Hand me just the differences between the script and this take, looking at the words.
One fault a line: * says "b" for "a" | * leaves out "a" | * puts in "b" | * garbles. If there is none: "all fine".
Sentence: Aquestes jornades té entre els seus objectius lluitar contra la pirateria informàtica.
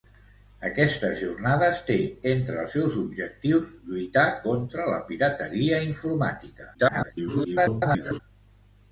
* garbles